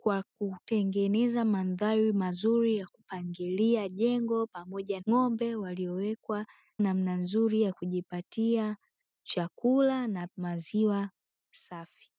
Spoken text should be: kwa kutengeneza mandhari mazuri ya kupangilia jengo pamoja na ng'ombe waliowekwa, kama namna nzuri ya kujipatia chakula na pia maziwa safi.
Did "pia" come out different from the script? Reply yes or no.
yes